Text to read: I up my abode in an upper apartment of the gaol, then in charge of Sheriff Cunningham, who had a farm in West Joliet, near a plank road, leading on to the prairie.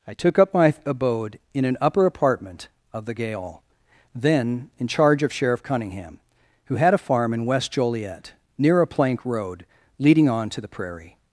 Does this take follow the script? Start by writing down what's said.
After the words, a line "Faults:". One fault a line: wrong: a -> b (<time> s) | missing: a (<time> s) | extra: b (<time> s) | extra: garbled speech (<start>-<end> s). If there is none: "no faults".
I took up my abode in an upper apartment of the gaol, then in charge of Sheriff Cunningham, who had a farm in West Joliet, near a plank road, leading on to the prairie.
Faults:
extra: took (0.1 s)